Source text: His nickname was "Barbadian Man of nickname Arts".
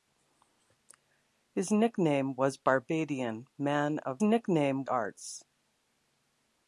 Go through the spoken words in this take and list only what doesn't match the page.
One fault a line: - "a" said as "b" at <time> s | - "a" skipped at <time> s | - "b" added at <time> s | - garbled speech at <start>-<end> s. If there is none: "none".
none